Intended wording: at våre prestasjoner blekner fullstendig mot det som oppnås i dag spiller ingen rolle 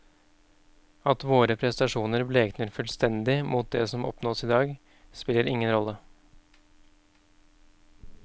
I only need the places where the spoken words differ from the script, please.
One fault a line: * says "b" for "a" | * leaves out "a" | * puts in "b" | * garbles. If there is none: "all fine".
all fine